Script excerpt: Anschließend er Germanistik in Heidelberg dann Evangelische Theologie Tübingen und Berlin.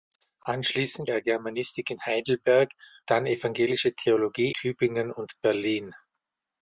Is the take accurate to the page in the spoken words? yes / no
yes